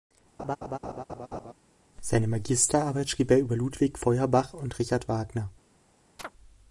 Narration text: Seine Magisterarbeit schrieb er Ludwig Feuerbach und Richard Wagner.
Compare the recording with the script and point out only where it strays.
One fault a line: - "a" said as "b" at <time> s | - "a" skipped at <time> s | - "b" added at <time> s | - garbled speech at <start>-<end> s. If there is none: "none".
- "über" added at 3.4 s